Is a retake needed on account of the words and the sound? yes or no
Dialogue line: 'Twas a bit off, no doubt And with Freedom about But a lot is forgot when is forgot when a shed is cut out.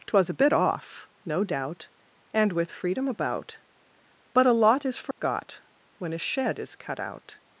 yes